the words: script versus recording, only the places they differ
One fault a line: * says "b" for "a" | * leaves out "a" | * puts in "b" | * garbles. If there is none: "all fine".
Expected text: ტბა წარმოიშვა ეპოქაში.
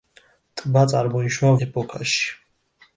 all fine